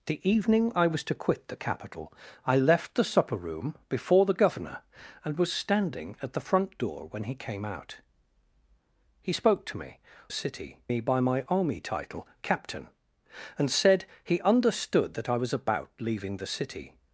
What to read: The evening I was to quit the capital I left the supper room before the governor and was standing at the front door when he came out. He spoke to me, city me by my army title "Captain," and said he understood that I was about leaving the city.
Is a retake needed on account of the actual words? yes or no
no